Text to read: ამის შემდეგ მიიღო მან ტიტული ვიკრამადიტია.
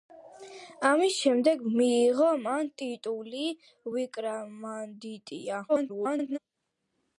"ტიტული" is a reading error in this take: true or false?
false